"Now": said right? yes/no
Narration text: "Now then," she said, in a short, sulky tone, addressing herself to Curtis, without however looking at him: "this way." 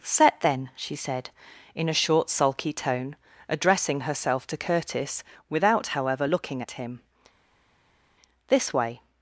no